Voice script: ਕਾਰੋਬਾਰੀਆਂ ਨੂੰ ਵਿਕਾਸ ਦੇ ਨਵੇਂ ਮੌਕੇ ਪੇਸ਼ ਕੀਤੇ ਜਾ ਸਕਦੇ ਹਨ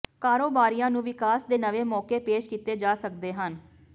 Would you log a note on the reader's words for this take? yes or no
no